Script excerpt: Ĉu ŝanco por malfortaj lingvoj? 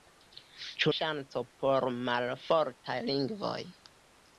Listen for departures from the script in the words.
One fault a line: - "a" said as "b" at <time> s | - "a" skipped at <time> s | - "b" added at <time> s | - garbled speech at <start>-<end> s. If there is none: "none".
none